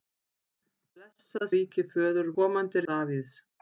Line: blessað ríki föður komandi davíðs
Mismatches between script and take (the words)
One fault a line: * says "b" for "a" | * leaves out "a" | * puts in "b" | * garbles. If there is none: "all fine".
all fine